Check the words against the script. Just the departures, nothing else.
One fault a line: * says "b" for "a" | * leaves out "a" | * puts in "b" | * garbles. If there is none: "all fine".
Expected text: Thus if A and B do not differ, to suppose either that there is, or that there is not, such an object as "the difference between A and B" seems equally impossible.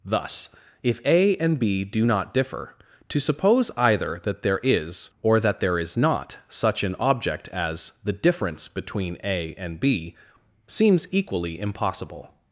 all fine